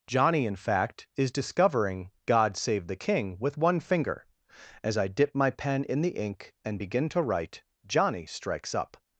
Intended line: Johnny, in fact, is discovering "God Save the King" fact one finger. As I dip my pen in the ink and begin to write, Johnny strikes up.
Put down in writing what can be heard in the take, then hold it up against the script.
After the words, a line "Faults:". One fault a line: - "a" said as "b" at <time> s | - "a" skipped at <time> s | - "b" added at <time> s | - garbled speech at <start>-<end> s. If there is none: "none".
Johnny, in fact, is discovering "God Save the King" with one finger. As I dip my pen in the ink and begin to write, Johnny strikes up.
Faults:
- "fact" said as "with" at 3.4 s